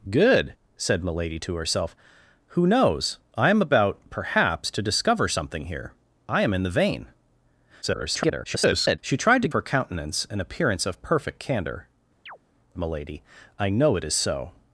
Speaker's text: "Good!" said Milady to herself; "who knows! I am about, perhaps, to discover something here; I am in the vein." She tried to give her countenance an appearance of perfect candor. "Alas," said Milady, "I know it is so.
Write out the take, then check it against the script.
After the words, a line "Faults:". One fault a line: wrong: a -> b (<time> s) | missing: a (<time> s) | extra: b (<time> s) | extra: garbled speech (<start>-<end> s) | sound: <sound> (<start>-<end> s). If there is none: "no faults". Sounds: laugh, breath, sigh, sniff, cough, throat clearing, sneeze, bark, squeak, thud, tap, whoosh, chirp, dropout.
"Good!" said Milady to herself; "who knows! I am about, perhaps, to discover something here; I am in the vein." [garbled] She tried to her countenance an appearance of perfect candor. "Milady, "I know it is so.
Faults:
extra: garbled speech (7.8-9.0 s)
missing: give (9.5 s)
missing: Alas said (11.9 s)
sound: chirp (12.3-12.4 s)